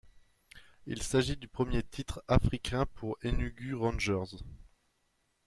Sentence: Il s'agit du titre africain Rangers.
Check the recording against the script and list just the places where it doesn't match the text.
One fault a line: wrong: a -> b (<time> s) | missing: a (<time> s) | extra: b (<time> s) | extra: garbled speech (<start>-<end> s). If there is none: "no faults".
extra: premier (1.5 s)
extra: pour Enugu (2.9 s)